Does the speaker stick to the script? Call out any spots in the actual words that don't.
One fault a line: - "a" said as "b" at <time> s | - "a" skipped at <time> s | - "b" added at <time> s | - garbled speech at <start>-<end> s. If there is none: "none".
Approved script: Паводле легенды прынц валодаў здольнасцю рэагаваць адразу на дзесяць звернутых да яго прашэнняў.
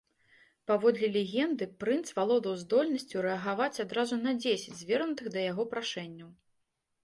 none